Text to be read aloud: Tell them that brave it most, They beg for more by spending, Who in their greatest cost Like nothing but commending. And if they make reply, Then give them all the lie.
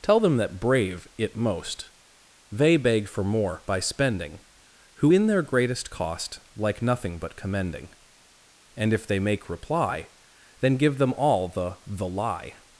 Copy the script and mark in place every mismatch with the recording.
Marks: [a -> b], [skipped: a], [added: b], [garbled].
Tell them that brave it most, They beg for more by spending, Who in their greatest cost Like nothing but commending. And if they make reply, Then give them all the [added: the] lie.